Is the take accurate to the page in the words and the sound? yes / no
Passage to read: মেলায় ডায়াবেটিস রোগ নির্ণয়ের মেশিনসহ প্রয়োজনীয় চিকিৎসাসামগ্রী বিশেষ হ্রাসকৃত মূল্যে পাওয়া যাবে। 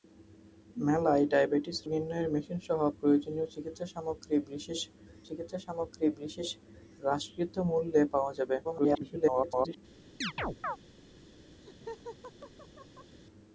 no